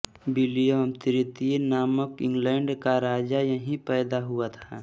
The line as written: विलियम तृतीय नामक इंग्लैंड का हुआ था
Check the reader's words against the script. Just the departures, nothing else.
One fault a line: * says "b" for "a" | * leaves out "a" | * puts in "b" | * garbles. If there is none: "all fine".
* puts in "राजा यहीं पैदा"